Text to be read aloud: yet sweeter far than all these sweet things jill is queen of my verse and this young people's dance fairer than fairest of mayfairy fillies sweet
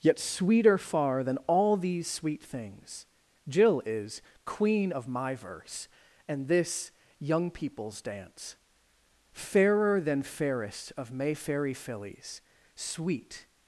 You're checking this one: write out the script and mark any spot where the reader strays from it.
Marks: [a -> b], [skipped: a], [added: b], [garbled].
yet sweeter far than all these sweet things jill is queen of my verse and this young people's dance fairer than fairest of mayfairy fillies sweet